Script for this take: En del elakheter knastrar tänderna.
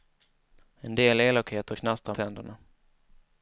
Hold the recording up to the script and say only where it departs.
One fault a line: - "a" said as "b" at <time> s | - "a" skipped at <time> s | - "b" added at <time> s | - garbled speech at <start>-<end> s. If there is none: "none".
none